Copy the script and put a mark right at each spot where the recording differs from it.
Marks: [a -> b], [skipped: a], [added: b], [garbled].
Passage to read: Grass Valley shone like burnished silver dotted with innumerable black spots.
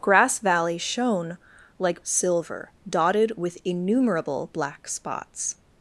Grass Valley shone like [skipped: burnished] silver dotted with innumerable black spots.